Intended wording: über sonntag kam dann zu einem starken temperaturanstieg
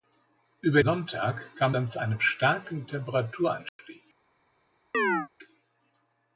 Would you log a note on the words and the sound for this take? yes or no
yes